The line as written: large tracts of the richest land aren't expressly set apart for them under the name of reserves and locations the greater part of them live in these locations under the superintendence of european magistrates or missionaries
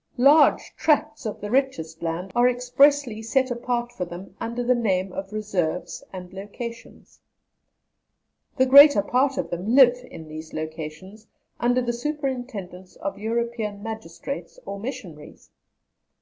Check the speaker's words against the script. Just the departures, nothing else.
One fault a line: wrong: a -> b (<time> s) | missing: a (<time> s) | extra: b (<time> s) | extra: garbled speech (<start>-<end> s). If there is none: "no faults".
wrong: aren't -> are (2.4 s)